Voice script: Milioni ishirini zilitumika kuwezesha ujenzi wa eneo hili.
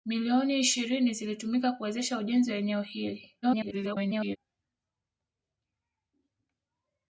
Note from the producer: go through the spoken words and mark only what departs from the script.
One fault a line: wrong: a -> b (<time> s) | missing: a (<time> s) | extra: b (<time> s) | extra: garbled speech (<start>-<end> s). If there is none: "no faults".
extra: garbled speech (3.4-4.4 s)